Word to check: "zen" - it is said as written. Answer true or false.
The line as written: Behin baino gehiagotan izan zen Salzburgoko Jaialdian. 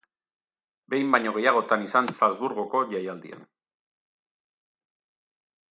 false